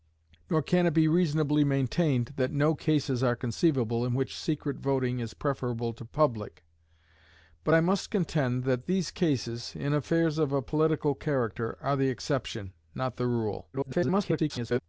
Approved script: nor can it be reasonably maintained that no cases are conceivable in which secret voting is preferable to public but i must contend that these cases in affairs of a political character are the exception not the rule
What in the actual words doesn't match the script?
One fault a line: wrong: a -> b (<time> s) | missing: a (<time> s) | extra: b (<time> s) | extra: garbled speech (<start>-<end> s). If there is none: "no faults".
extra: garbled speech (13.7-14.8 s)